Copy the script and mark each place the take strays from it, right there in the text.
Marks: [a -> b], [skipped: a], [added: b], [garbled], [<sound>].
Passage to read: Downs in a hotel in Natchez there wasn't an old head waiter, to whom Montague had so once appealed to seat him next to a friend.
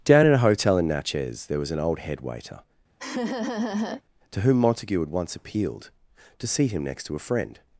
[Downs -> Down] in a hotel in Natchez there [wasn't -> was] an old head waiter, [laugh] to whom Montague had [skipped: so] once appealed to seat him next to a friend.